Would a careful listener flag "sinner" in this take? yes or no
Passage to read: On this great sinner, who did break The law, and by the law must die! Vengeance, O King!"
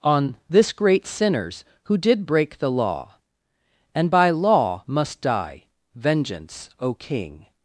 yes